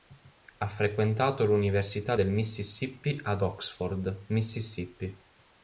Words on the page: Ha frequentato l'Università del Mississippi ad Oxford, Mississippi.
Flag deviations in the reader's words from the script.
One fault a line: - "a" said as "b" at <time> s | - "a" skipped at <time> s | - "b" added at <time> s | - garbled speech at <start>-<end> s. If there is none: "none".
none